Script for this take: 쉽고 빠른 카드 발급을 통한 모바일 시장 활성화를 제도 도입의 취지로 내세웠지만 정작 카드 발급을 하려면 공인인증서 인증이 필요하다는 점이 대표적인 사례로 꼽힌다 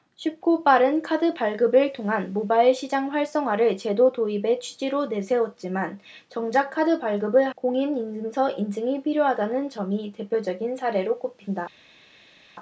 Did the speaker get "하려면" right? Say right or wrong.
wrong